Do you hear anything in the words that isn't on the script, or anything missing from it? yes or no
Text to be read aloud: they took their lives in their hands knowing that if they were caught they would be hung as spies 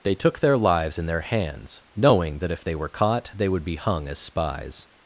no